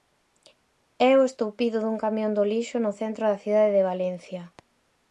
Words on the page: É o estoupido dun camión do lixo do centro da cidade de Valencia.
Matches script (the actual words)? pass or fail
fail